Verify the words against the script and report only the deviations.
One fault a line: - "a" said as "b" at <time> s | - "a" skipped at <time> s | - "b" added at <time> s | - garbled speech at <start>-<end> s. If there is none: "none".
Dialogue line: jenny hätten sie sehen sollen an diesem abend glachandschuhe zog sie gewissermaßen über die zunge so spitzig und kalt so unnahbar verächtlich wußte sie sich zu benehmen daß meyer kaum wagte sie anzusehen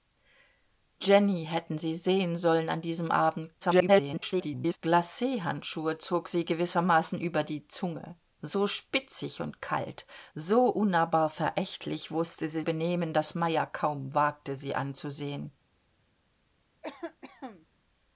- garbled speech at 3.6-4.8 s
- "sich zu" skipped at 12.6 s